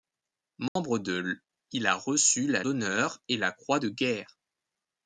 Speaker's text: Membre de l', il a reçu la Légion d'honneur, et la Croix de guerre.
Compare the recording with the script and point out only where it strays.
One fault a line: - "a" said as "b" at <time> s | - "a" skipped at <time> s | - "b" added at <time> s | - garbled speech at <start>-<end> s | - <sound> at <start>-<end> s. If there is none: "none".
- dropout at 0.7-0.8 s
- "Légion" skipped at 2.6 s